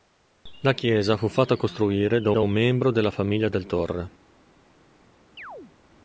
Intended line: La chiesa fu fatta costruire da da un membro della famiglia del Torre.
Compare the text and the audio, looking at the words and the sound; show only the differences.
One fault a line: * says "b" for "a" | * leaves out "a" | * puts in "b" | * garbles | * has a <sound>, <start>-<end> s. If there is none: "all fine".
* has a chirp, 5.4-5.7 s